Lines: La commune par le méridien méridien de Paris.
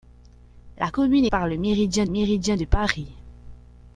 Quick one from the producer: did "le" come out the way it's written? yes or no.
yes